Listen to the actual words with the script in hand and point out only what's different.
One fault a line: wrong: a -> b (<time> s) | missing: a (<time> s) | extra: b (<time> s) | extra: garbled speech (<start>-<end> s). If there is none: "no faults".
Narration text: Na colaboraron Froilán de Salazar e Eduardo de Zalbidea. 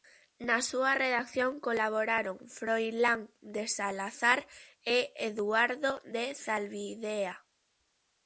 extra: súa redacción (0.7 s)